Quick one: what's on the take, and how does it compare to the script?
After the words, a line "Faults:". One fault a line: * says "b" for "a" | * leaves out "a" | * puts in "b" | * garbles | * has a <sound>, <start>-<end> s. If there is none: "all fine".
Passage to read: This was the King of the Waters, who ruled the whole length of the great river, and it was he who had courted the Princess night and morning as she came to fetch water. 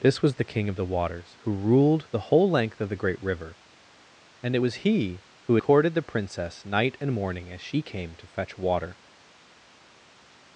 This was the King of the Waters, who ruled the whole length of the great river, and it was he who courted the Princess night and morning as she came to fetch water.
Faults:
* leaves out "had"